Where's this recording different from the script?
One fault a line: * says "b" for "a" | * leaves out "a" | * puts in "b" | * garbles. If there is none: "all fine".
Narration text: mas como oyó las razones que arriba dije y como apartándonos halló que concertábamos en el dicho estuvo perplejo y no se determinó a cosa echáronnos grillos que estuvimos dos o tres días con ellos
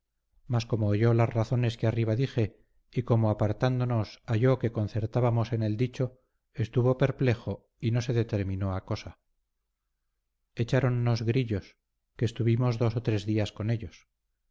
all fine